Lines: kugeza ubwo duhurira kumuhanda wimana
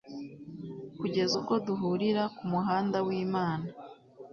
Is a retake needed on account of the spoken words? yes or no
no